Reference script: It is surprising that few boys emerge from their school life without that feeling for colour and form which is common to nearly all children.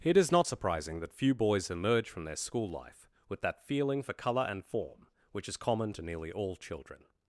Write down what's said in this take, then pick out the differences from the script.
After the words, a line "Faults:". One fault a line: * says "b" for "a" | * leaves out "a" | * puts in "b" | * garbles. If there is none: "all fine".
It is not surprising that few boys emerge from their school life with that feeling for colour and form which is common to nearly all children.
Faults:
* puts in "not"
* says "with" for "without"